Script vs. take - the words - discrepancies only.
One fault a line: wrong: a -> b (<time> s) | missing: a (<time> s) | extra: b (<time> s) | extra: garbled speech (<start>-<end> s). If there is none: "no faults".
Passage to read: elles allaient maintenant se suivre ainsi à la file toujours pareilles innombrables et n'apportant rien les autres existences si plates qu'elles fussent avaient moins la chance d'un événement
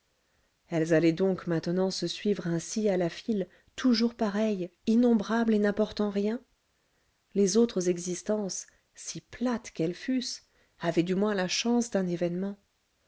extra: donc (1.1 s)
extra: du (11.0 s)